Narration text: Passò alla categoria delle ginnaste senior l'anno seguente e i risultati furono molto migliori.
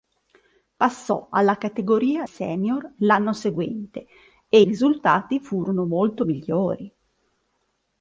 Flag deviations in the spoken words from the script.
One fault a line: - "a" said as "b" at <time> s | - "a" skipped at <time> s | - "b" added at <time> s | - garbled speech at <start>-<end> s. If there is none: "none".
- "delle ginnaste" skipped at 2.2 s
- "i" skipped at 4.6 s